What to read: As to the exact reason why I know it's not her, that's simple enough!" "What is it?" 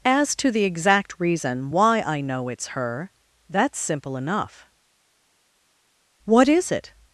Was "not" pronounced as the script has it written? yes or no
no